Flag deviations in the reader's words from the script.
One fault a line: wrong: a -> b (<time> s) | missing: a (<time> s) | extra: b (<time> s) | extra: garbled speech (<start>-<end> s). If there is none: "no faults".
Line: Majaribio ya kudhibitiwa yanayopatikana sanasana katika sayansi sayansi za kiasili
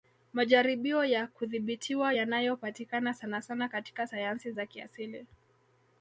missing: sayansi (4.5 s)